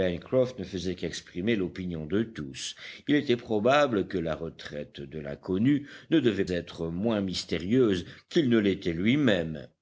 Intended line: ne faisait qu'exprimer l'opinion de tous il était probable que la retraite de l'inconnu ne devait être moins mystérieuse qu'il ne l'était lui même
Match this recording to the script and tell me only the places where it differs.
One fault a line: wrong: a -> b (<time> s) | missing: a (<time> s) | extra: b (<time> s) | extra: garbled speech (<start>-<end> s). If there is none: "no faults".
no faults